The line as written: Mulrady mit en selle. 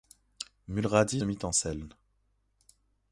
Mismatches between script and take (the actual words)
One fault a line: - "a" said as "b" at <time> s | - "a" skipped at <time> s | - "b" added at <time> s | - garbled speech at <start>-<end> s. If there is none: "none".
none